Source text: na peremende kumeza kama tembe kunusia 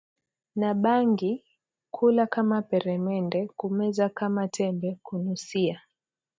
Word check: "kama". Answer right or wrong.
right